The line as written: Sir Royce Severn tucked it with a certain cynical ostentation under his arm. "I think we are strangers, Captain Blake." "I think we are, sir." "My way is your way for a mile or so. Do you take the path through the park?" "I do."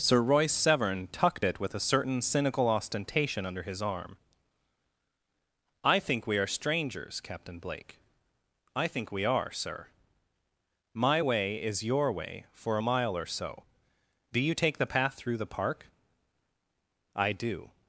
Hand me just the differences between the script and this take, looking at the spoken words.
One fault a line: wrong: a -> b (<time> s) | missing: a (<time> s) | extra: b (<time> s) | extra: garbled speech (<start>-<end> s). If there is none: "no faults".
no faults